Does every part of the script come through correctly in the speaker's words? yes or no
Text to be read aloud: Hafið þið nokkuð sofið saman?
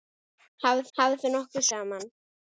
no